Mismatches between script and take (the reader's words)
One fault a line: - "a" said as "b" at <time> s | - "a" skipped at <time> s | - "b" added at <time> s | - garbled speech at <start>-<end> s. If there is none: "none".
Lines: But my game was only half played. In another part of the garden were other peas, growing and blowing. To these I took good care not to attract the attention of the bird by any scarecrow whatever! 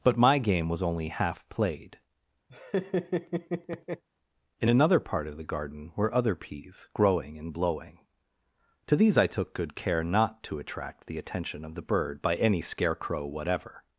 none